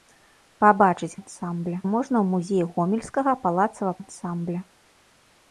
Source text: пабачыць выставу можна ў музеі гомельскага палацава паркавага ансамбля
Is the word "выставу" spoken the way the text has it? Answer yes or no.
no